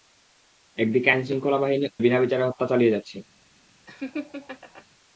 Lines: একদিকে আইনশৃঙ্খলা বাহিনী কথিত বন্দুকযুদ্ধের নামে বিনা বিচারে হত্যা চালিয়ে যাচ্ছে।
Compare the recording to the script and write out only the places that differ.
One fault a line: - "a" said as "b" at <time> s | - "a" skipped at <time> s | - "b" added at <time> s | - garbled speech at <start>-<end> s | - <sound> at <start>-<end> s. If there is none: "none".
- "কথিত বন্দুকযুদ্ধের নামে" skipped at 1.9 s
- laugh at 3.9-4.8 s